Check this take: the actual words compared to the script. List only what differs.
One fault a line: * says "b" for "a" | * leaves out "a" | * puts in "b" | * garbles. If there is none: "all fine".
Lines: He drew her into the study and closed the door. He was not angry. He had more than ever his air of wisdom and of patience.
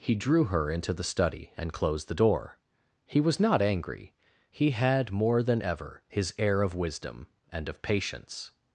all fine